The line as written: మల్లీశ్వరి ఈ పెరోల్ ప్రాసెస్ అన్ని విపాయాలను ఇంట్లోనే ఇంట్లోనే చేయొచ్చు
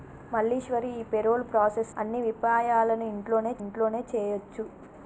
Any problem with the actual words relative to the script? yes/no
no